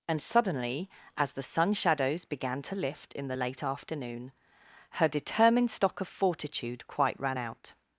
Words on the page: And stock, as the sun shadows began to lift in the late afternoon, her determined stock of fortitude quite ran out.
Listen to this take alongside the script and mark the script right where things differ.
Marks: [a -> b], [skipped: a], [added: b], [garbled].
And [stock, -> suddenly] as the sun shadows began to lift in the late afternoon, her determined stock of fortitude quite ran out.